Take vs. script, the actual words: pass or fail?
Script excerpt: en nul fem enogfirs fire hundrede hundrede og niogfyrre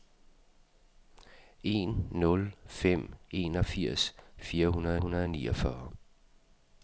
pass